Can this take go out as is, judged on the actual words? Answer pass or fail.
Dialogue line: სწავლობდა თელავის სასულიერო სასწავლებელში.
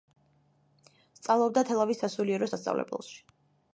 pass